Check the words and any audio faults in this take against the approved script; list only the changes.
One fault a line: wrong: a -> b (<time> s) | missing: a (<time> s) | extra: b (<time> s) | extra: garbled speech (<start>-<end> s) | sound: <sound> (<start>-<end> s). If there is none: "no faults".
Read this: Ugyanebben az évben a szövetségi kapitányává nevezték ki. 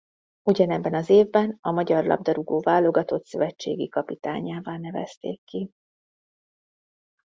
extra: magyar labdarúgó válogatott (1.7 s)